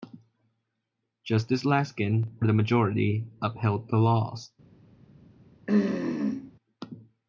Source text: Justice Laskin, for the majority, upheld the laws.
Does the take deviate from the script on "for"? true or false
true